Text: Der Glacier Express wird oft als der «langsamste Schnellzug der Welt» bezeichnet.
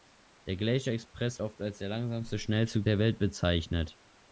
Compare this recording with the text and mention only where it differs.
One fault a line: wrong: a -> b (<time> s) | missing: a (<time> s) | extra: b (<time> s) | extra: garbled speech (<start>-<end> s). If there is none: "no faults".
missing: wird (1.4 s)